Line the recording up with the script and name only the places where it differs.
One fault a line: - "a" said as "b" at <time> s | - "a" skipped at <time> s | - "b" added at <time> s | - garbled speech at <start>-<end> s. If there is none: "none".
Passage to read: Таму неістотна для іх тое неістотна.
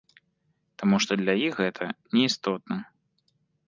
- "неістотна" said as "што" at 1.1 s
- "тое" said as "гэта" at 1.6 s